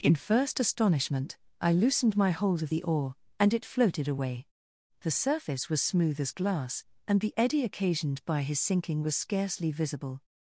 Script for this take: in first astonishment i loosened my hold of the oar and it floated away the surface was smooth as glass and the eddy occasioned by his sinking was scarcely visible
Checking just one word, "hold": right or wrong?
right